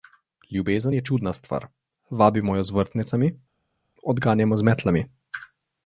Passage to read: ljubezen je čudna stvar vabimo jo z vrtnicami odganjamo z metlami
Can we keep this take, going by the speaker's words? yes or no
yes